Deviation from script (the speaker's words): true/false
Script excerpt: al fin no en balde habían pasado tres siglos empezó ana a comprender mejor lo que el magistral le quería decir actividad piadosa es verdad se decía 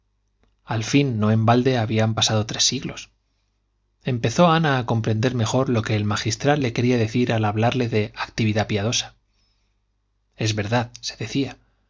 true